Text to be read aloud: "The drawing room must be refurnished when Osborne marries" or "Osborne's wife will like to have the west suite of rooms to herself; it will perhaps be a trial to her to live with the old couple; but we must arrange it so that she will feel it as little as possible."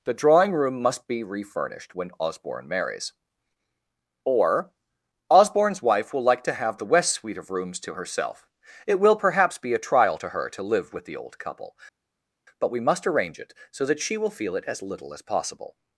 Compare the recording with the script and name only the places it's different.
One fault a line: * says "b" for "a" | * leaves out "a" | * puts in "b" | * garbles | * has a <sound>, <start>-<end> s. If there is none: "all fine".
all fine